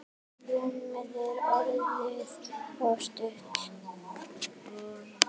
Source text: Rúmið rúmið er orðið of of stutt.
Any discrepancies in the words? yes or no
yes